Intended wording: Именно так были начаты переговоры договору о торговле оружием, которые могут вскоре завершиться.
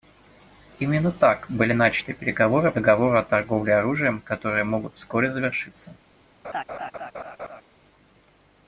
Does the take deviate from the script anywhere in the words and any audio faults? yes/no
yes